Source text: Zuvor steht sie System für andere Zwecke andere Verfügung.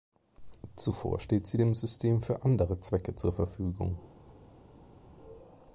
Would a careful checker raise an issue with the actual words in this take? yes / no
yes